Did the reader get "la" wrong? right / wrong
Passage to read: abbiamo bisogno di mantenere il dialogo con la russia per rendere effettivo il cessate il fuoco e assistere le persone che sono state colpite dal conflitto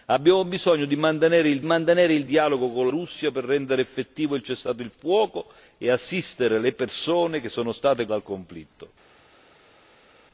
wrong